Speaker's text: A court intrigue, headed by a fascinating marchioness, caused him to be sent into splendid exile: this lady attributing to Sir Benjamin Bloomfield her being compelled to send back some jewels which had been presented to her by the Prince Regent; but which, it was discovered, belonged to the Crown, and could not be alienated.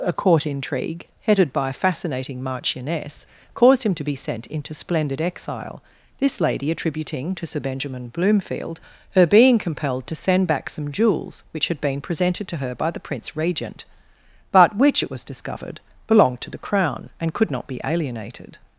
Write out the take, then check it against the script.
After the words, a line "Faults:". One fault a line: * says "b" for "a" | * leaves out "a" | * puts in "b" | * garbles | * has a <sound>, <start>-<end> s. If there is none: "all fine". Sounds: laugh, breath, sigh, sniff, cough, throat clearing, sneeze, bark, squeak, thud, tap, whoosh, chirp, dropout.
A court intrigue, headed by a fascinating marchioness, caused him to be sent into splendid exile: this lady attributing to Sir Benjamin Bloomfield her being compelled to send back some jewels which had been presented to her by the Prince Regent; but which, it was discovered, belonged to the Crown, and could not be alienated.
Faults:
all fine